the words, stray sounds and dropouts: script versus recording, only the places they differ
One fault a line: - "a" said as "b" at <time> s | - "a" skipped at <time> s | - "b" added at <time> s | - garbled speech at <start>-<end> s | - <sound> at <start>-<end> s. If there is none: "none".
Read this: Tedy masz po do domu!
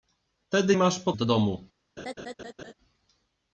- laugh at 2.0-2.7 s